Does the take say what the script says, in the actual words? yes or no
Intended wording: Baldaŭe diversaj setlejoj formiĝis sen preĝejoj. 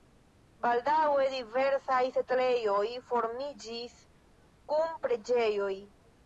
no